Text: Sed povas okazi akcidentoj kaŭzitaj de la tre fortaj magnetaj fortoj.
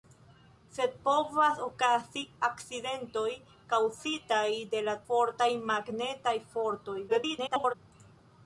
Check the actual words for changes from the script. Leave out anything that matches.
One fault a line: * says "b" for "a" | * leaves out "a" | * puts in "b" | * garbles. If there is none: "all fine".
* leaves out "tre"
* garbles